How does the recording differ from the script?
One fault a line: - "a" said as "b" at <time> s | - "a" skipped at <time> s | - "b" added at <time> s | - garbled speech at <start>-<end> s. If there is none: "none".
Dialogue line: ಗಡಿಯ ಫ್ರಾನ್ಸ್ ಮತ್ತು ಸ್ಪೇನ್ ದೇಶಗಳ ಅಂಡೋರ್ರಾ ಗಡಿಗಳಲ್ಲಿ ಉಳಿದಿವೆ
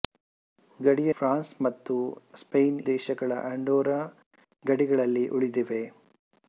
none